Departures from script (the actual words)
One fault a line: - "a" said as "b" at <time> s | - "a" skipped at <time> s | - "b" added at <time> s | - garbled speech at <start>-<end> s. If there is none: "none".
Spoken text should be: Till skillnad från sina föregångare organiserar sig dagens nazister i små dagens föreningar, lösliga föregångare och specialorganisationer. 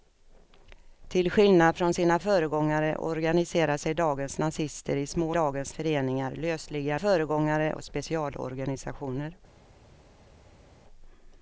none